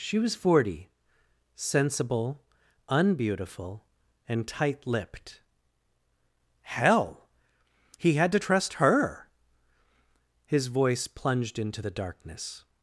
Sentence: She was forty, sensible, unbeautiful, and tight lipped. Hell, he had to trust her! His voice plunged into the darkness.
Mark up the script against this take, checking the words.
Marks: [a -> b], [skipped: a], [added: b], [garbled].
She was forty, sensible, unbeautiful, and tight lipped. Hell, he had to trust her! His voice plunged into the darkness.